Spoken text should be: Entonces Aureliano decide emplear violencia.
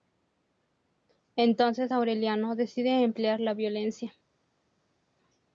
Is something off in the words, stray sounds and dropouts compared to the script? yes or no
yes